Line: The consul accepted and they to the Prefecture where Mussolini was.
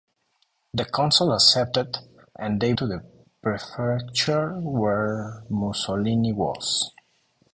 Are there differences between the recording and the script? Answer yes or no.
no